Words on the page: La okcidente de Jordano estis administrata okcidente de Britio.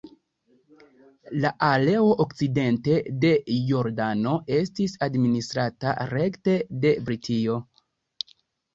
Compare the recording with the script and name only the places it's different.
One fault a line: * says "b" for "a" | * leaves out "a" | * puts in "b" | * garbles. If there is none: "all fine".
* puts in "areo"
* says "rekte" for "okcidente"